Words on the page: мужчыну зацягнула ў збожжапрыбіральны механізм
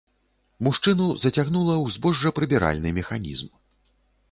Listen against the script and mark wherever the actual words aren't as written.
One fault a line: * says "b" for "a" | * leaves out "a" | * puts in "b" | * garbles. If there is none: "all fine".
all fine